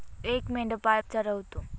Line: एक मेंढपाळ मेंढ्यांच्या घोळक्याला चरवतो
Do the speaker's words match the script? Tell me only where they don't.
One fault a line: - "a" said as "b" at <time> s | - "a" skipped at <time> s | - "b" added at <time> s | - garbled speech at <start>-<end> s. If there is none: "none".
- "मेंढ्यांच्या घोळक्याला" skipped at 1.0 s